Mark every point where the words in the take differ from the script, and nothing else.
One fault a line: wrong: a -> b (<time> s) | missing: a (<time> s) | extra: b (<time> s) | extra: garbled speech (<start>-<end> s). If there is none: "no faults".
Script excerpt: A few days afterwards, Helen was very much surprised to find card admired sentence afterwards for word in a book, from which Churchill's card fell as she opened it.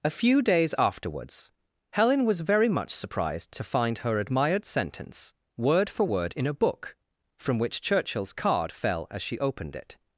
wrong: card -> her (4.0 s)
wrong: afterwards -> word (5.6 s)